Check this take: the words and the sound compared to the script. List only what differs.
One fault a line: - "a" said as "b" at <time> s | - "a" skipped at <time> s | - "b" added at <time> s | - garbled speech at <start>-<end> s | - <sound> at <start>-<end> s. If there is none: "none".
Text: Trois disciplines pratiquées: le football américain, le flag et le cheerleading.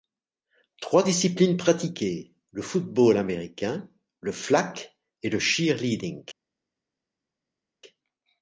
none